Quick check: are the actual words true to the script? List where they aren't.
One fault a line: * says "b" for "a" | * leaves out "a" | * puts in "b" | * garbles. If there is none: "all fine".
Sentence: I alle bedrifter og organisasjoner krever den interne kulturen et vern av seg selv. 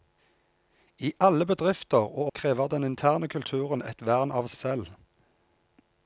* leaves out "organisasjoner"
* leaves out "seg"